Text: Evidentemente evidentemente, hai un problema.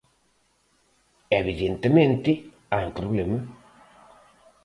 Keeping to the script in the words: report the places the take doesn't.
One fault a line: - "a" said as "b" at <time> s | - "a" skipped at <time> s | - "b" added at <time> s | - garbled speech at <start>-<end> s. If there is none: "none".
- "evidentemente" skipped at 2.3 s